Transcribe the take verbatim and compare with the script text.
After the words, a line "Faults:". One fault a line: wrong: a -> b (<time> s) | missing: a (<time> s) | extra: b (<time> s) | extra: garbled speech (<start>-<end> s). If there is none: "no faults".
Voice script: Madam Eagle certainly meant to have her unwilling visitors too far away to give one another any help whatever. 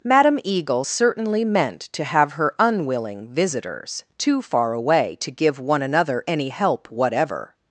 Madam Eagle certainly meant to have her unwilling visitors too far away to give one another any help whatever.
Faults:
no faults